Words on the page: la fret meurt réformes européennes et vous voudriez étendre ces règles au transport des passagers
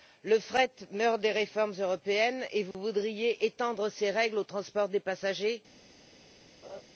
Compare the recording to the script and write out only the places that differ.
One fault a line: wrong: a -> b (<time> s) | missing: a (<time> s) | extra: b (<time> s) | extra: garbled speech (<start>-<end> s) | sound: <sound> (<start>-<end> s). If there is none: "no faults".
wrong: la -> le (0.2 s)
extra: des (1.2 s)
sound: dropout (2.7-2.7 s)
sound: laugh (6.6-6.8 s)